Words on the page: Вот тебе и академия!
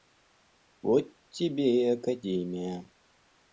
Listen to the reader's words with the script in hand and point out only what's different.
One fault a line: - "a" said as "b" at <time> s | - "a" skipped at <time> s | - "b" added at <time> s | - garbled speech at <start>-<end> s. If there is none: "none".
none